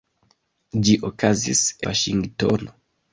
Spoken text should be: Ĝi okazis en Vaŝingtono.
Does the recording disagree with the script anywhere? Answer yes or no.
yes